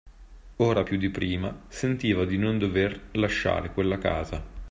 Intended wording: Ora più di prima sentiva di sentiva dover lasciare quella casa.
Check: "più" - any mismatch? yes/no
no